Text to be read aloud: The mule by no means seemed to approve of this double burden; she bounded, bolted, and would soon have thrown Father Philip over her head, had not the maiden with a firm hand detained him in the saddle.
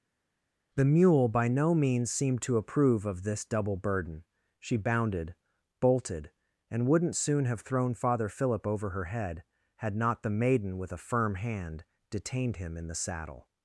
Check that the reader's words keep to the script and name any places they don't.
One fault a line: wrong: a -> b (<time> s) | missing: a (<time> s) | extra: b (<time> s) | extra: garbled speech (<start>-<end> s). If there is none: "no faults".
wrong: would -> wouldn't (6.9 s)